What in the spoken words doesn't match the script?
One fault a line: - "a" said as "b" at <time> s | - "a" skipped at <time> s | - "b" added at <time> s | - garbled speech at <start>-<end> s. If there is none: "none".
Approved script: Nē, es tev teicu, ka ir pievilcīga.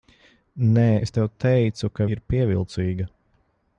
none